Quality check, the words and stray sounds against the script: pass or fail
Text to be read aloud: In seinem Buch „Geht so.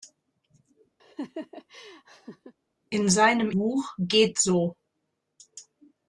fail